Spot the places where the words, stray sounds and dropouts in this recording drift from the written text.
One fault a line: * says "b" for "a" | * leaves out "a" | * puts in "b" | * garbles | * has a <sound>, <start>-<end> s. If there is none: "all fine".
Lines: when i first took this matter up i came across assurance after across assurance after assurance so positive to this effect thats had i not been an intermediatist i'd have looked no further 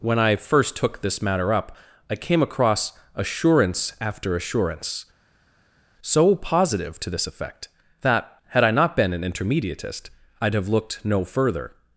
* leaves out "across"
* leaves out "after assurance"
* says "that" for "thats"